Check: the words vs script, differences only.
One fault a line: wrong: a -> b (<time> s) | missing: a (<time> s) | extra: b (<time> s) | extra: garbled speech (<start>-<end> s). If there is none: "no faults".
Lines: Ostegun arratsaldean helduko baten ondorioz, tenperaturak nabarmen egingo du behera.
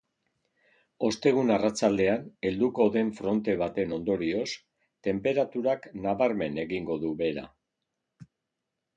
extra: den fronte (3.0 s)